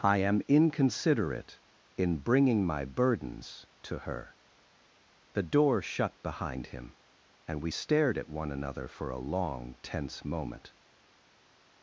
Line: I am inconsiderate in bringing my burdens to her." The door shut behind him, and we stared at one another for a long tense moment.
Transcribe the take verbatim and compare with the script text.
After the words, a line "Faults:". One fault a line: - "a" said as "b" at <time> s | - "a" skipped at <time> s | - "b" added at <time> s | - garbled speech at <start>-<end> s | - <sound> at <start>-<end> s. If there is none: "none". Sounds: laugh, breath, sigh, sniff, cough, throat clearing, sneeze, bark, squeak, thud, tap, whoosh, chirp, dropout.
I am inconsiderate in bringing my burdens to her." The door shut behind him, and we stared at one another for a long tense moment.
Faults:
none